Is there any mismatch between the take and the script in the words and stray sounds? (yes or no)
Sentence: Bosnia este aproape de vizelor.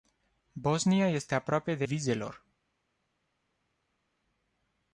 no